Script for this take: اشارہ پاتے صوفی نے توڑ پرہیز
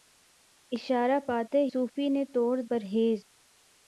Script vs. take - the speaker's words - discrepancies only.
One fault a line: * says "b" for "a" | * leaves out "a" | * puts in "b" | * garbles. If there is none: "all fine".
all fine